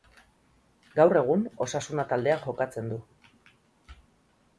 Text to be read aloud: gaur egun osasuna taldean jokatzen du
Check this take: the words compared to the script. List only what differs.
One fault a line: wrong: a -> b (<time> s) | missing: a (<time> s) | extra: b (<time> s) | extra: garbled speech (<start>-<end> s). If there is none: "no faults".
no faults